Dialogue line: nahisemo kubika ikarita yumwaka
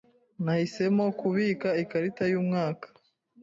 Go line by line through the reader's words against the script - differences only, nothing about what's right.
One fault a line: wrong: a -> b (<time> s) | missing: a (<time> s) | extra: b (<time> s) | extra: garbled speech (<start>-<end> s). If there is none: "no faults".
no faults